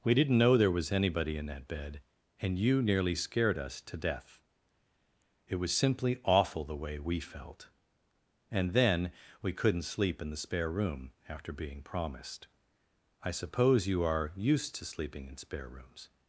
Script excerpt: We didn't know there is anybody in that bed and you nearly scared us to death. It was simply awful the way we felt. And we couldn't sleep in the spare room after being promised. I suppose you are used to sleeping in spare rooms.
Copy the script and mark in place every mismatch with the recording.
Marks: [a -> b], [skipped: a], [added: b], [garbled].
We didn't know there [is -> was] anybody in that bed and you nearly scared us to death. It was simply awful the way we felt. And [added: then] we couldn't sleep in the spare room after being promised. I suppose you are used to sleeping in spare rooms.